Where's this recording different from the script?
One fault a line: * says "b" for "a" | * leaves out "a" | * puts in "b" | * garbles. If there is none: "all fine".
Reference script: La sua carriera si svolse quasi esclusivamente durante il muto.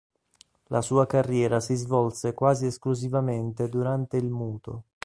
all fine